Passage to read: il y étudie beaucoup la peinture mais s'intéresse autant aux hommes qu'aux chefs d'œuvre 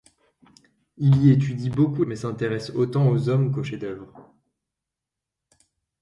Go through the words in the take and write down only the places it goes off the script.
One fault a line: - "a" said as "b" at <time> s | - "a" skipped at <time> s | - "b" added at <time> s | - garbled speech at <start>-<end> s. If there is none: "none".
- "la peinture" skipped at 2.0 s